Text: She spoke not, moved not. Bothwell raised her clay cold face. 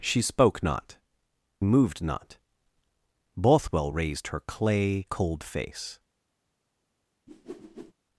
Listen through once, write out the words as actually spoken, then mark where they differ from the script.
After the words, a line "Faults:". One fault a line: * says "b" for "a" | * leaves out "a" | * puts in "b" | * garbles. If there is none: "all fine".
She spoke not, moved not. Bothwell raised her clay cold face.
Faults:
all fine